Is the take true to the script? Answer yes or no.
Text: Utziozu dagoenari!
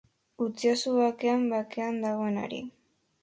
no